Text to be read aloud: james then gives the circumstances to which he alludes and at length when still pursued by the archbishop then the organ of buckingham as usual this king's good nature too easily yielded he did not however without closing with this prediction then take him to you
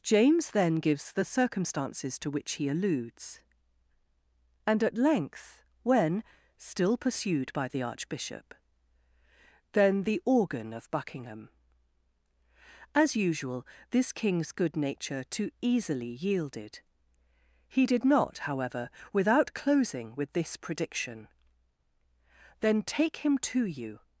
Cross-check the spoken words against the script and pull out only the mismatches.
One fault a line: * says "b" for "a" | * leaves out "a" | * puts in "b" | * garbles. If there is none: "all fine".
all fine